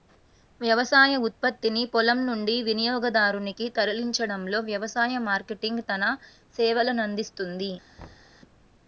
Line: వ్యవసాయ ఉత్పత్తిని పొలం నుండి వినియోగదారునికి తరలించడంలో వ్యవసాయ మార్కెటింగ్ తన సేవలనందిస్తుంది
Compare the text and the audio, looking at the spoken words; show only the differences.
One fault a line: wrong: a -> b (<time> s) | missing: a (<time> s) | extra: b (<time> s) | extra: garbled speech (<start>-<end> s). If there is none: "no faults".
no faults